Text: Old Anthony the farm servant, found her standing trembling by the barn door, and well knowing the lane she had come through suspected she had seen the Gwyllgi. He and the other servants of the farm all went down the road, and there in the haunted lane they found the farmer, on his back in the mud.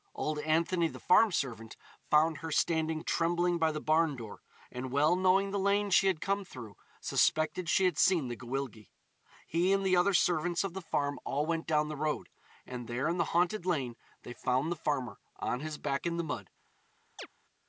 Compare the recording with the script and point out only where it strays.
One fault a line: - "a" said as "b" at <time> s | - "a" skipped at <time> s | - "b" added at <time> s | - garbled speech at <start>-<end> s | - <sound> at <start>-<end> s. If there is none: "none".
- chirp at 17.2-17.3 s